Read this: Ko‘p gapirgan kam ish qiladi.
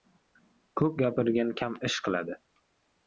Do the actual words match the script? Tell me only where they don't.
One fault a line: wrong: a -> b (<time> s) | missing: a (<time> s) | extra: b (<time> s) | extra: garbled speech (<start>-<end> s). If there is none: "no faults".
no faults